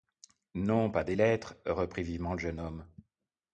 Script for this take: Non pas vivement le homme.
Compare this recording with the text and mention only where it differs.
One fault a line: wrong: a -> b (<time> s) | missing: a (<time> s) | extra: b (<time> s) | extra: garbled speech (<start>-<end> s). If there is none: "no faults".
extra: des lettres reprit (1.0 s)
extra: jeune (2.4 s)